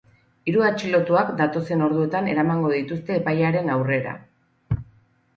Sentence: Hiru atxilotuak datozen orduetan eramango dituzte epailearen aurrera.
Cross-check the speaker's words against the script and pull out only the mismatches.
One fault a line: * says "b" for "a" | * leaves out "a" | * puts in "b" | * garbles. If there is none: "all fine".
all fine